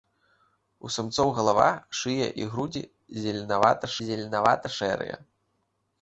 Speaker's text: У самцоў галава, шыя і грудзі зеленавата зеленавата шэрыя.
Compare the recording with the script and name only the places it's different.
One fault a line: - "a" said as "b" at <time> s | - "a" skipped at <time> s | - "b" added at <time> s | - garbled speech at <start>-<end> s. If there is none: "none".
none